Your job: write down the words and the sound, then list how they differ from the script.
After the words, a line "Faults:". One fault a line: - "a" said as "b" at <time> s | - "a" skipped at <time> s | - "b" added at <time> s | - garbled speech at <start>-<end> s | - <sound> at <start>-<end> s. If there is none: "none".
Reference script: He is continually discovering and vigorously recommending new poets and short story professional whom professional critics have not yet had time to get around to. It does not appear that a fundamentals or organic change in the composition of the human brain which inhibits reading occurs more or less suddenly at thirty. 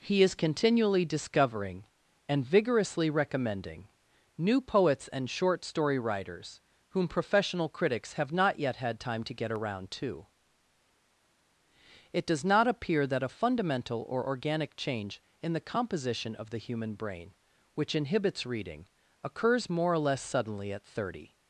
He is continually discovering and vigorously recommending new poets and short story writers whom professional critics have not yet had time to get around to. It does not appear that a fundamental or organic change in the composition of the human brain which inhibits reading occurs more or less suddenly at thirty.
Faults:
- "professional" said as "writers" at 6.0 s
- "fundamentals" said as "fundamental" at 13.3 s